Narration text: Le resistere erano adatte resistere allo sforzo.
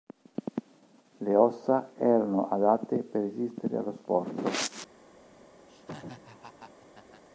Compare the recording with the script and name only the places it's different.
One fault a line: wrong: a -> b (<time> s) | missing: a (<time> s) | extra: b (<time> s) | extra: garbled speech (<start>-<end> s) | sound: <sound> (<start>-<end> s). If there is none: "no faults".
wrong: resistere -> ossa (1.4 s)
extra: per (3.0 s)
sound: laugh (5.7-7.2 s)